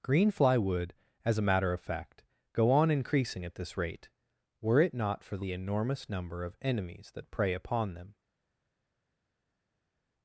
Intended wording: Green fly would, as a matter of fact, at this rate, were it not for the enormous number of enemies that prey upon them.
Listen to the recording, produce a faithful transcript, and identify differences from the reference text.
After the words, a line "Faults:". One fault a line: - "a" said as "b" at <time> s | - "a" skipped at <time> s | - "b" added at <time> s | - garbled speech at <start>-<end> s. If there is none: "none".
Green fly would, as a matter of fact, go on increasing at this rate, were it not for the enormous number of enemies that prey upon them.
Faults:
- "go on increasing" added at 2.5 s